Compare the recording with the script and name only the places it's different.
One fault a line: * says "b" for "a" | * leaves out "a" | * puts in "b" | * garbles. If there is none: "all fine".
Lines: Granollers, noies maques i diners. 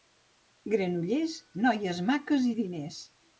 all fine